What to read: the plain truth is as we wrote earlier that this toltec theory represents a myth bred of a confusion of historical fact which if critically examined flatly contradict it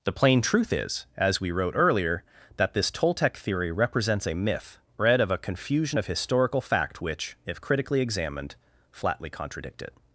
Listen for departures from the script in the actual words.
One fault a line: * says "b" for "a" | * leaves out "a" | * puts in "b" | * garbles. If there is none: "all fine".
all fine